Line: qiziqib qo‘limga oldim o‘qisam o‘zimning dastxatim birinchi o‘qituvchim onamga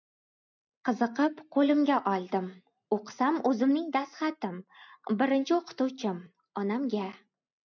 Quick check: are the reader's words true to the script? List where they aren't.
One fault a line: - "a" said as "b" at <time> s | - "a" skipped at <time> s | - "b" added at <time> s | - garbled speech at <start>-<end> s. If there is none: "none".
none